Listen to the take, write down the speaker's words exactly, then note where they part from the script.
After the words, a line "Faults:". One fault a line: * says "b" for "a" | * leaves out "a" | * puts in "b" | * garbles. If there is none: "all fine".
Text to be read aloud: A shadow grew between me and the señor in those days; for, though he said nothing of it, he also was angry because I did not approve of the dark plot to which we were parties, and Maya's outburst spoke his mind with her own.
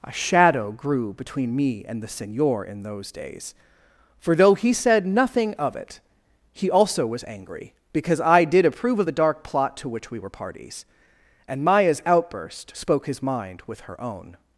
A shadow grew between me and the señor in those days; for, though he said nothing of it, he also was angry because I did approve of the dark plot to which we were parties, and Maya's outburst spoke his mind with her own.
Faults:
* leaves out "not"